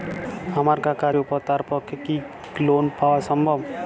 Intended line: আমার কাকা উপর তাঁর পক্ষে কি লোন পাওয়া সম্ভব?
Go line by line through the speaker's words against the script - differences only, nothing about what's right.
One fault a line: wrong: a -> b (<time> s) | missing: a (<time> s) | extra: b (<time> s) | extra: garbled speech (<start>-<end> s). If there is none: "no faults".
no faults